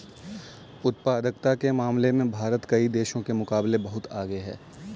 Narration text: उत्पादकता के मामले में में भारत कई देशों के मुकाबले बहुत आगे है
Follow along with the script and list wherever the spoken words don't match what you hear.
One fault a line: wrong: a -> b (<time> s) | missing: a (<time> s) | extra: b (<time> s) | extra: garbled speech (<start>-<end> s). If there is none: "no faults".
missing: में (2.3 s)